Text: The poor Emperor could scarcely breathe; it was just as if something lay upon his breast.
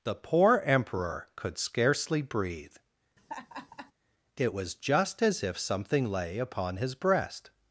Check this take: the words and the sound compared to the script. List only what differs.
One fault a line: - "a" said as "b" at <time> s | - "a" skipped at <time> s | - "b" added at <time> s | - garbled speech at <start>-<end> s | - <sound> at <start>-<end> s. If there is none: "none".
- laugh at 3.2-3.9 s